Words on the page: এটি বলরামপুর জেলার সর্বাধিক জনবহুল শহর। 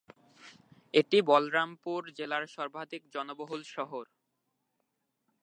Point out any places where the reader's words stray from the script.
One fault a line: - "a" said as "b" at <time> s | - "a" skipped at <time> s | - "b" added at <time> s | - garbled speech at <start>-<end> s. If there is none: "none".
none